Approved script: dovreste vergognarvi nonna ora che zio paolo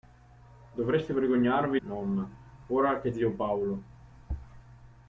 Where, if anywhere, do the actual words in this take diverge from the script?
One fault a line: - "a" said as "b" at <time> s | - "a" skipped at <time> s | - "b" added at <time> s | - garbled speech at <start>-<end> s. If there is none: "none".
none